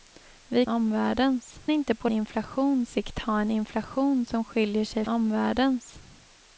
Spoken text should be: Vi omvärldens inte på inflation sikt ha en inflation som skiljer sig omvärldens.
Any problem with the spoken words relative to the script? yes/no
no